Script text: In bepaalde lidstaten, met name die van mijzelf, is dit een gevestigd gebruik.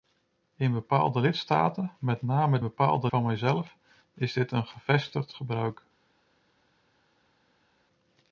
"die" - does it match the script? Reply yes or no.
no